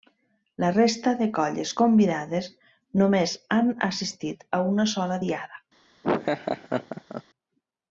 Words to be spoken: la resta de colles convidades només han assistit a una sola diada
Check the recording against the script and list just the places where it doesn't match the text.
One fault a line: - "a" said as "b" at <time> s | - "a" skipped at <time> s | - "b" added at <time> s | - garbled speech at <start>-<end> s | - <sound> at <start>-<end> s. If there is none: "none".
- laugh at 6.0-7.2 s